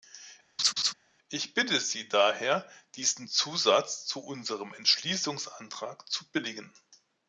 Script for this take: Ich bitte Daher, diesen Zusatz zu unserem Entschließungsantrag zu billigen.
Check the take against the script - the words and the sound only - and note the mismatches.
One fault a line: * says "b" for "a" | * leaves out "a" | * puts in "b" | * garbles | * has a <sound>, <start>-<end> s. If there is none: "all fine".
* has a laugh, 0.6-0.9 s
* puts in "Sie"